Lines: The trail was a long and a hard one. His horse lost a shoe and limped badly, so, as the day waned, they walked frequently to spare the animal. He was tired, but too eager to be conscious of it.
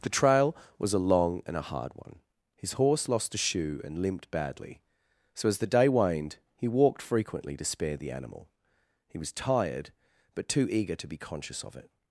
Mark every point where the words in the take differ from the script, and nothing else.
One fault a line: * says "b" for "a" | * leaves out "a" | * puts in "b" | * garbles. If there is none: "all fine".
* says "he" for "they"